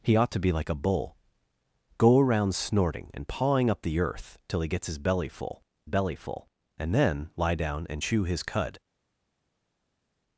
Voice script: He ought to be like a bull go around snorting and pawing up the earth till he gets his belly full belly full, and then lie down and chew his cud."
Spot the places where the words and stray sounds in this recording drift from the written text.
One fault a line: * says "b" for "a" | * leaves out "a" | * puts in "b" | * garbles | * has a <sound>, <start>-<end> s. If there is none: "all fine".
all fine